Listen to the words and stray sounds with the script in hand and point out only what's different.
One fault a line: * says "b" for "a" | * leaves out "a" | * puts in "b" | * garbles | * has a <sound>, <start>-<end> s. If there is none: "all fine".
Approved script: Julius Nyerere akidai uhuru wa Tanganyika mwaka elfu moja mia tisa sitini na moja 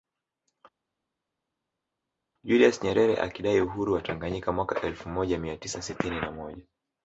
all fine